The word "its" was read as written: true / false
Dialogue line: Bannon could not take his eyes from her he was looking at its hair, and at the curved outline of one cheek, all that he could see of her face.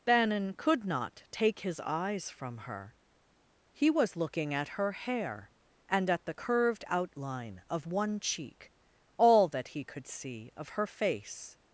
false